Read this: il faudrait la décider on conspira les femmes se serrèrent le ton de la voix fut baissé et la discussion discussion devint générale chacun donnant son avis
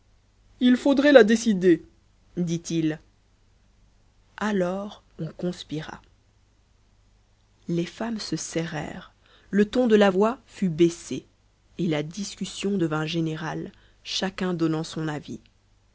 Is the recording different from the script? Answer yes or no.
yes